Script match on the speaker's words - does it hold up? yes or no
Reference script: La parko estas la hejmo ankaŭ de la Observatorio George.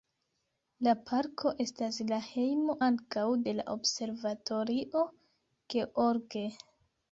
yes